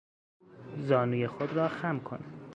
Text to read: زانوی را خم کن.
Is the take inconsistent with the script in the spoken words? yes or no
yes